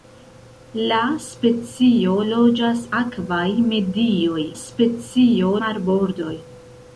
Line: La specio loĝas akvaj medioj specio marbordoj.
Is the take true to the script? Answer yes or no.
yes